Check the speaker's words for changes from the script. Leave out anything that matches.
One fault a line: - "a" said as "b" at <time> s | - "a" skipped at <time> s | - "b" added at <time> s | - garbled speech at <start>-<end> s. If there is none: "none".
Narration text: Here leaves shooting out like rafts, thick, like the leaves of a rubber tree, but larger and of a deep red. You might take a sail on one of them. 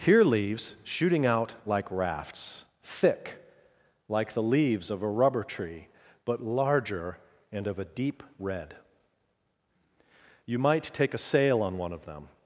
none